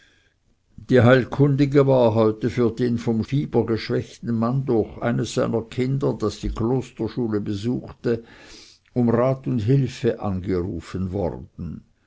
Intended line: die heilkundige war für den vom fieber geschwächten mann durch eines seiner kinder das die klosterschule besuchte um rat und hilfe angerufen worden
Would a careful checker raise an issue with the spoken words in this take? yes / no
yes